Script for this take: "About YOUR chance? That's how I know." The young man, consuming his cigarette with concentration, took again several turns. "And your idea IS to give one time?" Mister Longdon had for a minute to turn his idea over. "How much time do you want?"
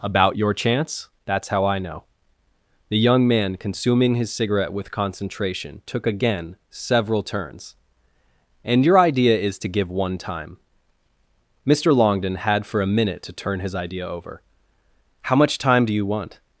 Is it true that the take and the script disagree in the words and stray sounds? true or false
false